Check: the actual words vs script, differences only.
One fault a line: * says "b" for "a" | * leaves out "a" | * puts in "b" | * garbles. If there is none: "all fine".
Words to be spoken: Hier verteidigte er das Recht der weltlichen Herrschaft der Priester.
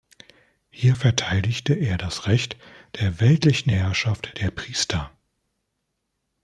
all fine